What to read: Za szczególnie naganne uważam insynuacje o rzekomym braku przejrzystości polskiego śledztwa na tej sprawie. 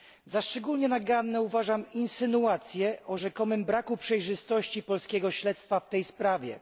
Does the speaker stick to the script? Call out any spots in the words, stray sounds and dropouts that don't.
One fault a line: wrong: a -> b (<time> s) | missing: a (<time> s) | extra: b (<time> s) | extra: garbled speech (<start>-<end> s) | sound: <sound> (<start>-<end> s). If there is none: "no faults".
wrong: na -> w (5.8 s)